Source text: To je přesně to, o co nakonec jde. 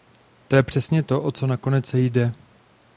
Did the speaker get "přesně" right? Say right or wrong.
right